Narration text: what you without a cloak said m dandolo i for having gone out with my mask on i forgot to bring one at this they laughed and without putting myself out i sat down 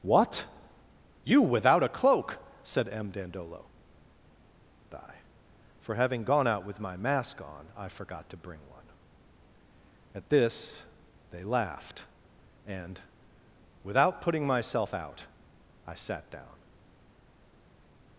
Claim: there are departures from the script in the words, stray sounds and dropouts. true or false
false